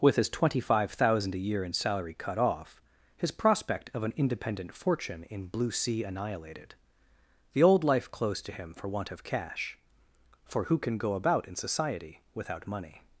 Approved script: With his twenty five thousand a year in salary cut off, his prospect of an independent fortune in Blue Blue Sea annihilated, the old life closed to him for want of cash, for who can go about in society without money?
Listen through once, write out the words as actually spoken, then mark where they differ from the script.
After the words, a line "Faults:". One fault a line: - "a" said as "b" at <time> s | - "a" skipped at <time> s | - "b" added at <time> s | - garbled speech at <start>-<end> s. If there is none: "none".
With his twenty five thousand a year in salary cut off, his prospect of an independent fortune in Blue Sea annihilated, the old life closed to him for want of cash, for who can go about in society without money?
Faults:
- "Blue" skipped at 5.7 s